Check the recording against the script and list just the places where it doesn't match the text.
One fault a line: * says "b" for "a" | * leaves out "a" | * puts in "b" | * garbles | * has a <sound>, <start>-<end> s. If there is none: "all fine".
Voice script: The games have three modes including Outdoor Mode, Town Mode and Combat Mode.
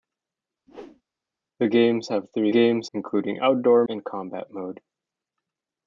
* has a whoosh, 0.7-1.0 s
* says "games" for "modes"
* leaves out "Mode Town Mode"